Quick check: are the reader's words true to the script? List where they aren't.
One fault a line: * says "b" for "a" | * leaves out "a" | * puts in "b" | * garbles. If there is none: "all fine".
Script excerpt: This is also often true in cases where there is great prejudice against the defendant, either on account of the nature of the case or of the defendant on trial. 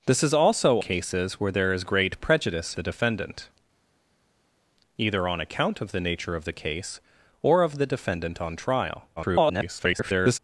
* leaves out "often true in"
* leaves out "against"
* garbles